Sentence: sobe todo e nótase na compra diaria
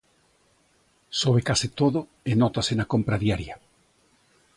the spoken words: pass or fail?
fail